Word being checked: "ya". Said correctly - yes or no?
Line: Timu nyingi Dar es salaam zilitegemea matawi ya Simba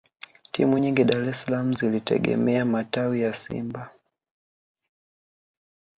yes